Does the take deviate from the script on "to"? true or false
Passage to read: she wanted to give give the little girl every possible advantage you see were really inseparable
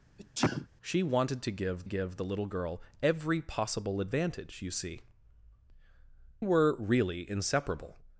false